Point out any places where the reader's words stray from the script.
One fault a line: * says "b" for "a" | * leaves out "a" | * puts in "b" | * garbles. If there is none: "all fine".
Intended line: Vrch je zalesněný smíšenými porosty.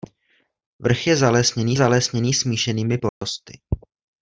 * puts in "zalesněný"